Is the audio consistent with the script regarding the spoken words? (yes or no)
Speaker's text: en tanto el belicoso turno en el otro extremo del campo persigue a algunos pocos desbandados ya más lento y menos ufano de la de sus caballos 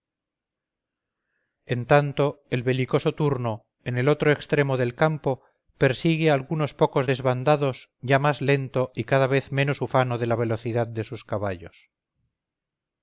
no